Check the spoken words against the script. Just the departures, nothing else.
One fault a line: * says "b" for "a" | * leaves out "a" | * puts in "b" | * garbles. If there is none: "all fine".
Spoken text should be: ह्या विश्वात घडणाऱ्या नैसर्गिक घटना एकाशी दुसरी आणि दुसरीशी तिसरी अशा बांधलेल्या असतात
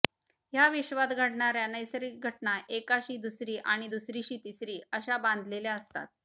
all fine